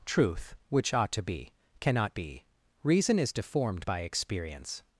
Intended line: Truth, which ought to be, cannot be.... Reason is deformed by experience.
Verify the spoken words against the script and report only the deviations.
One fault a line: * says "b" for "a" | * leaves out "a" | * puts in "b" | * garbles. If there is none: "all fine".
all fine